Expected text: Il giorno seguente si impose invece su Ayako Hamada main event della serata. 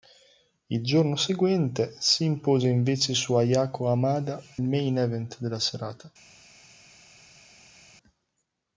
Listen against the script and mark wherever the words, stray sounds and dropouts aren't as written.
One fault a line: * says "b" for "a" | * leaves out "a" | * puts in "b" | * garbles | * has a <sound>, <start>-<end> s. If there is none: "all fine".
all fine